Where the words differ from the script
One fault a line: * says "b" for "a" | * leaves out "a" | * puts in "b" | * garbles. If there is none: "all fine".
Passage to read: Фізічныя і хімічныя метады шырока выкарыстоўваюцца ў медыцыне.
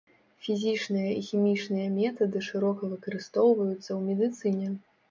all fine